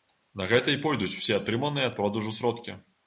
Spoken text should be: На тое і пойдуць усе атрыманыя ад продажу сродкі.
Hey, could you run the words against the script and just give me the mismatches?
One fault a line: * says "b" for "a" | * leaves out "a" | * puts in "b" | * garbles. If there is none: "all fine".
* says "гэта" for "тое"